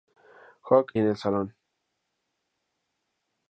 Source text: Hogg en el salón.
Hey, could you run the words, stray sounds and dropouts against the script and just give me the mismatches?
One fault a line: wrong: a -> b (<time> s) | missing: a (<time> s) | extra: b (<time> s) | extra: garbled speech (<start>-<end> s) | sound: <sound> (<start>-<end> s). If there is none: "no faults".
no faults